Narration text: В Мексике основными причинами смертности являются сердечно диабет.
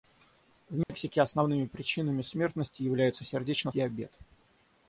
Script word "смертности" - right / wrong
right